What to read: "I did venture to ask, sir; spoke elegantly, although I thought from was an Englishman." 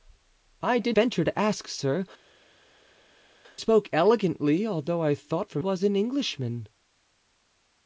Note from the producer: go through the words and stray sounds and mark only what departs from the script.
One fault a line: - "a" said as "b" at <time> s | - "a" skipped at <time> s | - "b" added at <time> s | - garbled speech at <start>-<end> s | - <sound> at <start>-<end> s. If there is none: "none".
none